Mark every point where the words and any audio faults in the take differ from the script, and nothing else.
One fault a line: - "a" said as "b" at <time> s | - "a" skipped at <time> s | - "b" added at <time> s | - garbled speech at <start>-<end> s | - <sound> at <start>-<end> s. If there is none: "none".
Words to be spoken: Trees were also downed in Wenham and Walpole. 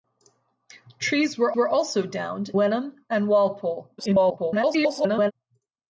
- "were" added at 1.5 s
- "in" skipped at 2.5 s
- garbled speech at 4.0-5.3 s